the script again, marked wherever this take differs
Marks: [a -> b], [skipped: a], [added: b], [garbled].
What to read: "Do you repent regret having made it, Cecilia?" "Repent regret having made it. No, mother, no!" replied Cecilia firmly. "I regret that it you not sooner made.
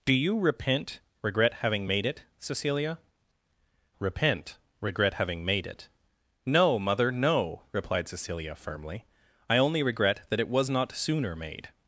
"Do you repent regret having made it, Cecilia?" "Repent regret having made it. No, mother, no!" replied Cecilia firmly. "I [added: only] regret that it [you -> was] not sooner made.